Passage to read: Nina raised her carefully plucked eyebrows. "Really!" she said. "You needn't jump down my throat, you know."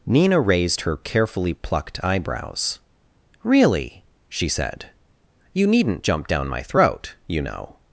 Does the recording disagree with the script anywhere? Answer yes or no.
no